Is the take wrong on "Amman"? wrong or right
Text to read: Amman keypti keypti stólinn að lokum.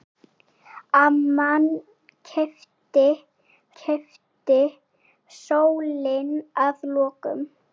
right